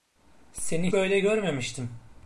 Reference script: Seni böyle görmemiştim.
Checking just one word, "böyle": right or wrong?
right